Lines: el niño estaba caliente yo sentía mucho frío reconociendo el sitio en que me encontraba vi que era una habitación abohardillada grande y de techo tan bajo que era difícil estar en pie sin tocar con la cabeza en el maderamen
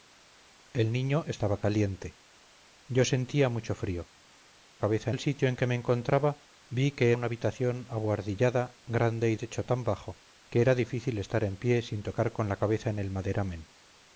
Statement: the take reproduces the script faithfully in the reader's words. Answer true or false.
false